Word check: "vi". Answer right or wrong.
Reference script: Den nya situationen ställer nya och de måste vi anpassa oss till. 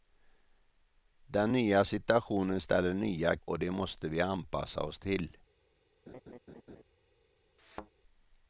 right